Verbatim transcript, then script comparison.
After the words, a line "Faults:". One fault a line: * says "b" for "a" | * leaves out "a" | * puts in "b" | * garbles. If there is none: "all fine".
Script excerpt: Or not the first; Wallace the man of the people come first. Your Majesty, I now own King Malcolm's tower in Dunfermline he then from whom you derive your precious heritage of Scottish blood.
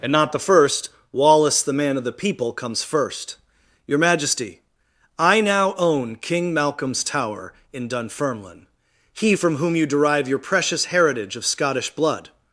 And not the first; Wallace the man of the people comes first. Your Majesty, I now own King Malcolm's tower in Dunfermline he from whom you derive your precious heritage of Scottish blood.
Faults:
* says "And" for "Or"
* says "comes" for "come"
* leaves out "then"